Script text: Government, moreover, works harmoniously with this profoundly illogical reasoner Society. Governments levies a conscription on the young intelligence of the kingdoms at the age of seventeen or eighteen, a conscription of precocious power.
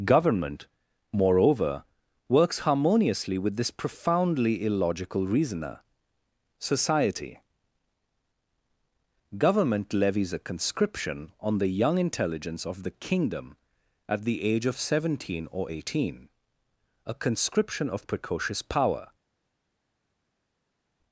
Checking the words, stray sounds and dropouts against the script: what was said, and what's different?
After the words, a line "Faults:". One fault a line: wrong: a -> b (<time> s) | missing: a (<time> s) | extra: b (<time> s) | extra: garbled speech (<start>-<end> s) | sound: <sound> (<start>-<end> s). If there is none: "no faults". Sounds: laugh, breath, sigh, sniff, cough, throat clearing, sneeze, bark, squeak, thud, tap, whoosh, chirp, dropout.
Government, moreover, works harmoniously with this profoundly illogical reasoner Society. Government levies a conscription on the young intelligence of the kingdom at the age of seventeen or eighteen, a conscription of precocious power.
Faults:
wrong: Governments -> Government (9.4 s)
wrong: kingdoms -> kingdom (12.9 s)